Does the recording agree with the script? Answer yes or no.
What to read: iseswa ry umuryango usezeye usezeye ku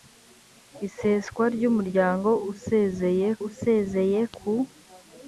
yes